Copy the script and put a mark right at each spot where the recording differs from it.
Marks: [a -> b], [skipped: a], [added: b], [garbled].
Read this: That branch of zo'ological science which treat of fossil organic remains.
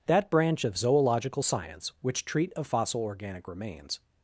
That branch of zo'ological science which treat of fossil organic remains.